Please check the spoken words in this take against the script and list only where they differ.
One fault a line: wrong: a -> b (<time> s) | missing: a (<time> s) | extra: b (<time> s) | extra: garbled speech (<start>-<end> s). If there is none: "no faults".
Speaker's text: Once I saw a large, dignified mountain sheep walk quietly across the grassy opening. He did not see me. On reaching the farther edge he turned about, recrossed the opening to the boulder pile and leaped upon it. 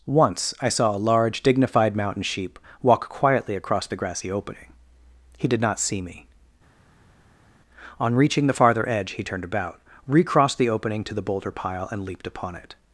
no faults